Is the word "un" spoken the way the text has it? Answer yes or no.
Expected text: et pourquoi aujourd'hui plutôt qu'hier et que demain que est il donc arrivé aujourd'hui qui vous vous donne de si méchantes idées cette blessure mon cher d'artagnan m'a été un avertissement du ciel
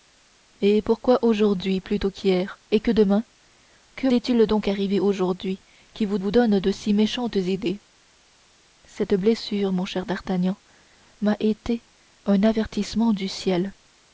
yes